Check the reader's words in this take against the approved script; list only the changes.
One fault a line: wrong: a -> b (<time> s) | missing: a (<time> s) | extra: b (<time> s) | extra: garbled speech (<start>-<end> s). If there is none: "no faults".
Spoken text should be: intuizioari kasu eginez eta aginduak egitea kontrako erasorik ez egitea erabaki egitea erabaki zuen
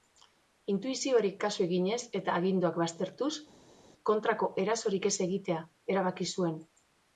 wrong: egitea -> baztertuz (2.8 s)
missing: egitea erabaki (6.3 s)